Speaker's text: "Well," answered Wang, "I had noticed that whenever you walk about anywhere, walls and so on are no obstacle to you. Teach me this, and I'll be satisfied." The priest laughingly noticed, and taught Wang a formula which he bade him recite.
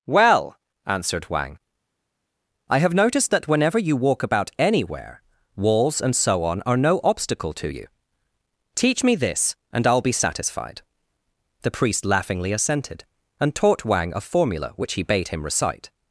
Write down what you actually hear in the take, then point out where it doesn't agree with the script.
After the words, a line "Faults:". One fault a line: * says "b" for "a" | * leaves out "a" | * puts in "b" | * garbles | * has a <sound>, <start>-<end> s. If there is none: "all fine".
"Well," answered Wang, "I have noticed that whenever you walk about anywhere, walls and so on are no obstacle to you. Teach me this, and I'll be satisfied." The priest laughingly assented, and taught Wang a formula which he bade him recite.
Faults:
* says "have" for "had"
* says "assented" for "noticed"